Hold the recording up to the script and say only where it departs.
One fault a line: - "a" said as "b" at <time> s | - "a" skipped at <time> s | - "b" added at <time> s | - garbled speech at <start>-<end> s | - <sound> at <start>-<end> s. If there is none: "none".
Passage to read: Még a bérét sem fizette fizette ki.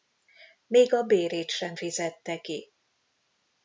- "fizette" skipped at 2.4 s